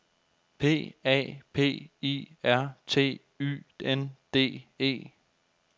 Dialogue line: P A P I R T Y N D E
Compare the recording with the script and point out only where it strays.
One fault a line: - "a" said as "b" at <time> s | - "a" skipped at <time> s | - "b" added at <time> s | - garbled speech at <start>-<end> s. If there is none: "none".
none